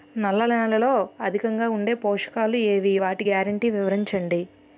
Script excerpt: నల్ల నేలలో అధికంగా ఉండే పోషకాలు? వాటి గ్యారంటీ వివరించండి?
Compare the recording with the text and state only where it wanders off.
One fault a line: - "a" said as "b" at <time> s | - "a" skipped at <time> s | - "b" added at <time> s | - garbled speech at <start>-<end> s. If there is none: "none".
- "ఏవి" added at 2.7 s